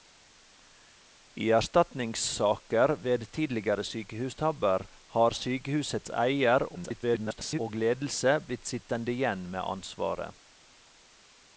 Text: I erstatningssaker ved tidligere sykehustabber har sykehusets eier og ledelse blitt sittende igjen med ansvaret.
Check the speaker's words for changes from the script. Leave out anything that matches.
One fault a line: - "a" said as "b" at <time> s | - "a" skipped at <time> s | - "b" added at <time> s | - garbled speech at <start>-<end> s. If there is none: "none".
- garbled speech at 6.7-7.6 s